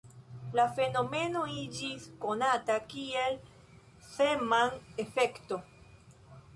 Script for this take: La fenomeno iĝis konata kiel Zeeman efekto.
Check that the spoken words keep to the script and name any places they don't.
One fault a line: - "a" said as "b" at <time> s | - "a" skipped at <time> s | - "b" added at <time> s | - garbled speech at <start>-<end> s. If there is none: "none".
none